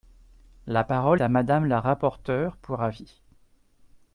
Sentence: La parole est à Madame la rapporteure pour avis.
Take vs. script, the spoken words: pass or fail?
fail